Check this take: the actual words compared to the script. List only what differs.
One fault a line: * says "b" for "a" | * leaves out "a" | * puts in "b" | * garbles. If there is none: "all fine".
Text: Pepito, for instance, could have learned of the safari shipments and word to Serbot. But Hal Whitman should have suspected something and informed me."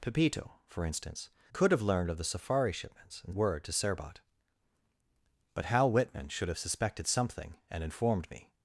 all fine